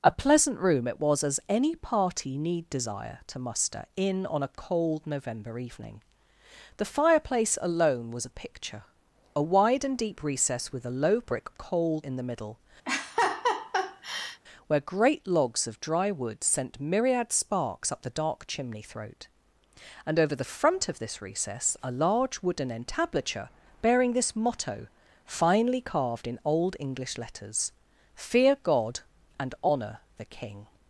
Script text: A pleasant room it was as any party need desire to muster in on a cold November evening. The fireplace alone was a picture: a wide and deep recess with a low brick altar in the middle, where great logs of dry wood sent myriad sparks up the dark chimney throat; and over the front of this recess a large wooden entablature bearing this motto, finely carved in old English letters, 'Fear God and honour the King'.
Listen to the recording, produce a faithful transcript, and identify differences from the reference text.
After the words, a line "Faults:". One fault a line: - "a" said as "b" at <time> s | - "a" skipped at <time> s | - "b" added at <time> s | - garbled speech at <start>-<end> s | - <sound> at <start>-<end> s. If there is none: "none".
A pleasant room it was as any party need desire to muster in on a cold November evening. The fireplace alone was a picture: a wide and deep recess with a low brick cold in the middle, where great logs of dry wood sent myriad sparks up the dark chimney throat; and over the front of this recess a large wooden entablature bearing this motto, finely carved in old English letters, 'Fear God and honour the King'.
Faults:
- "altar" said as "cold" at 11.6 s
- laugh at 12.9-14.4 s